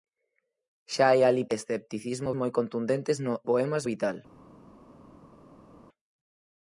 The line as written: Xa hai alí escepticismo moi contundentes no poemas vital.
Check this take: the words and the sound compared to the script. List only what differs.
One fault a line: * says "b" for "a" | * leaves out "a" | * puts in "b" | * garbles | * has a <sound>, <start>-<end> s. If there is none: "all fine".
all fine